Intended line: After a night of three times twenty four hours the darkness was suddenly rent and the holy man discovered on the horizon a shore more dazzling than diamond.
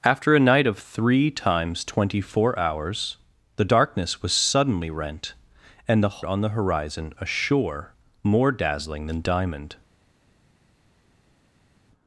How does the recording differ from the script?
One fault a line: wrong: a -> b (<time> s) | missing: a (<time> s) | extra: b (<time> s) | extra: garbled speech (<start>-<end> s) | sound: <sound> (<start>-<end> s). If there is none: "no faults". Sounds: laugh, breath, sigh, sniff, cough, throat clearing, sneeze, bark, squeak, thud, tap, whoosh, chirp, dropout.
missing: holy man discovered (6.2 s)